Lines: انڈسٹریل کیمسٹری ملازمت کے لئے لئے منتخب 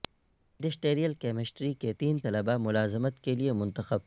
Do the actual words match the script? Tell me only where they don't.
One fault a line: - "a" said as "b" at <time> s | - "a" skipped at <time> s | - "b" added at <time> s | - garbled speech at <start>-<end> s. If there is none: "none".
- "کے تین طلبہ" added at 1.7 s
- "لئے" skipped at 3.5 s